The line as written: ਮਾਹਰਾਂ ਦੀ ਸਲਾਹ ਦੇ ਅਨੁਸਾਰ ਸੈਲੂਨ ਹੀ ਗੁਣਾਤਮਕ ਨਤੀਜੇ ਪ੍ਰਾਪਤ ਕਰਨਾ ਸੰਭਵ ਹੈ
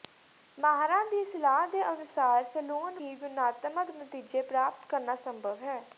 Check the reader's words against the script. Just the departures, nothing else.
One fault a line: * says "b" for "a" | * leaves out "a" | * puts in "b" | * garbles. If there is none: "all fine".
all fine